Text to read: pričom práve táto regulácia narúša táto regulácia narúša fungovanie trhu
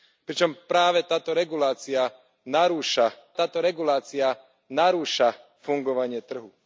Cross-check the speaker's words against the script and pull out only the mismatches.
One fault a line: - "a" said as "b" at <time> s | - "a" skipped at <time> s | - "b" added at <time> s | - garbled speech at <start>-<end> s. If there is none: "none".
none